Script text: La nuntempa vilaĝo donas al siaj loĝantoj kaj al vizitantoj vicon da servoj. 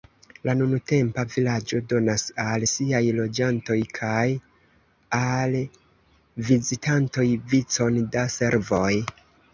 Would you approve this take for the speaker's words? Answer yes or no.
yes